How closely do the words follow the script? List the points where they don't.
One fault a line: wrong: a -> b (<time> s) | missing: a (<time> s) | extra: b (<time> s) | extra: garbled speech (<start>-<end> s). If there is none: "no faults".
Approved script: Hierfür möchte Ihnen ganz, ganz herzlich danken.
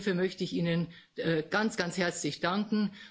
extra: ich (0.4 s)